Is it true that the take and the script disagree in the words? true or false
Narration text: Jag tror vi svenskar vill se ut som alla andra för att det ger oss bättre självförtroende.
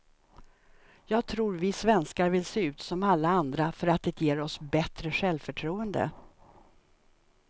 false